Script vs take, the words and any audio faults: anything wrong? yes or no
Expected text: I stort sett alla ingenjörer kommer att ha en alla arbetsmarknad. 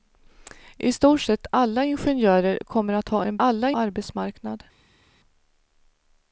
no